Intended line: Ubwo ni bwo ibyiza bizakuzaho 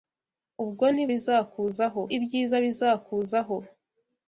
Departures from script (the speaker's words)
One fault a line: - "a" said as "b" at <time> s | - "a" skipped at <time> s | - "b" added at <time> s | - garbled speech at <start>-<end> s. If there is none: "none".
- "bwo" said as "bizakuzaho" at 1.1 s